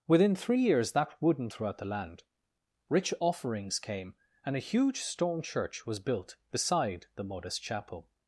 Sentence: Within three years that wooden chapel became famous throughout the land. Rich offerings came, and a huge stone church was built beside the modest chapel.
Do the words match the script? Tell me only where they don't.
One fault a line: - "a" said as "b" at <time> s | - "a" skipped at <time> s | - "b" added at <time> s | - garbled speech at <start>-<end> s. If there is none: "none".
- "chapel became famous" skipped at 1.5 s